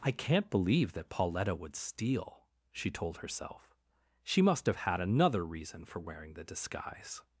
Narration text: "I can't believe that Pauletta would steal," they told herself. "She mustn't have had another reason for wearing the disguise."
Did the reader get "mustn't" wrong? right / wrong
wrong